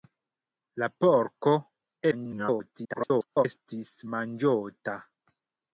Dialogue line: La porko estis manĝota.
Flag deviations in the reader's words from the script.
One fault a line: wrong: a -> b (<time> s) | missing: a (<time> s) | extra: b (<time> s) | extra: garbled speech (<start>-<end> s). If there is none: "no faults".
extra: garbled speech (2.1-3.4 s)